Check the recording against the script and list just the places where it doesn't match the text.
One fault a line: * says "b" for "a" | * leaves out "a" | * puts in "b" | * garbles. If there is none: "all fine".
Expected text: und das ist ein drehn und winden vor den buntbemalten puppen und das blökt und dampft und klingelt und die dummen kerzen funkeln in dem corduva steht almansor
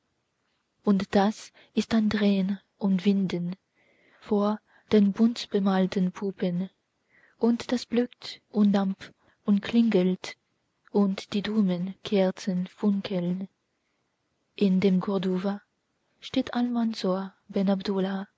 all fine